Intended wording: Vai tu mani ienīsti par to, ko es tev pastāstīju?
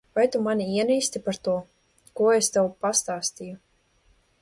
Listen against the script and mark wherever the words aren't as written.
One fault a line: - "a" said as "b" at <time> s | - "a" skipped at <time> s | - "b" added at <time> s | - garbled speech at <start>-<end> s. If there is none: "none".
none